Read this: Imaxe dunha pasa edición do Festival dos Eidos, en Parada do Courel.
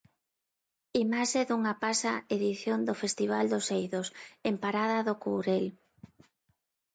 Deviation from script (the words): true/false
false